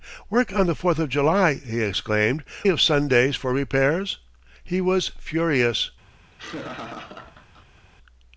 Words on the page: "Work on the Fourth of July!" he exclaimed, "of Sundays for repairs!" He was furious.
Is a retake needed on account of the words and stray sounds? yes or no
yes